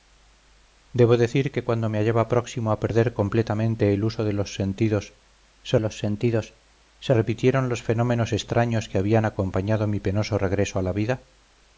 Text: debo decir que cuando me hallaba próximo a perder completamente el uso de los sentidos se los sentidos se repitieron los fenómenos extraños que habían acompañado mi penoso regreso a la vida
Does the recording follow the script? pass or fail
pass